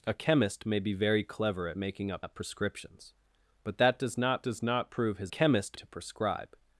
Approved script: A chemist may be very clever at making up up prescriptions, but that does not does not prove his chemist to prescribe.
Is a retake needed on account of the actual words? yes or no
no